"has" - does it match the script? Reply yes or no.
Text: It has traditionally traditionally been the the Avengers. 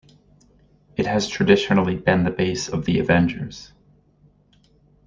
yes